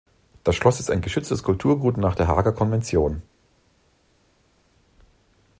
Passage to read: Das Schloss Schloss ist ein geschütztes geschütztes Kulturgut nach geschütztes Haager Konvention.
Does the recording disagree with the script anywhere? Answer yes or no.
yes